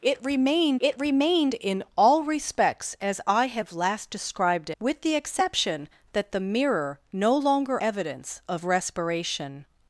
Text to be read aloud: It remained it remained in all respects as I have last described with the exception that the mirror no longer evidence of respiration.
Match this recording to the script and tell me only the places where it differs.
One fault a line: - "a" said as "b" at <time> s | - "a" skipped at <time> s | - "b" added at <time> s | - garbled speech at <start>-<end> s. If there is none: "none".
none